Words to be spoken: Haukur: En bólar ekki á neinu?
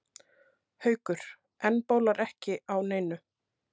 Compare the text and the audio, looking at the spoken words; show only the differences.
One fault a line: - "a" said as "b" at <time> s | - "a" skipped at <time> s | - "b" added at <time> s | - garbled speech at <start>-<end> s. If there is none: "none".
none